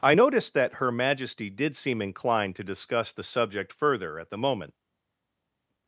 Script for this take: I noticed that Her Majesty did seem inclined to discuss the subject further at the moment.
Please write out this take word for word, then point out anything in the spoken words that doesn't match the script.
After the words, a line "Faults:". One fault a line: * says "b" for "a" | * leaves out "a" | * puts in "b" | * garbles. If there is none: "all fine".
I noticed that Her Majesty did seem inclined to discuss the subject further at the moment.
Faults:
all fine